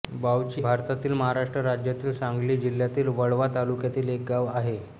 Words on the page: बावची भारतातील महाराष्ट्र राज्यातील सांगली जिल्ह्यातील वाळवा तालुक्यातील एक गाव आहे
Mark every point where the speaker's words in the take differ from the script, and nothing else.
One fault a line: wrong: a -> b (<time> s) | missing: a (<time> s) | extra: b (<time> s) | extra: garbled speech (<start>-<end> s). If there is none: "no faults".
no faults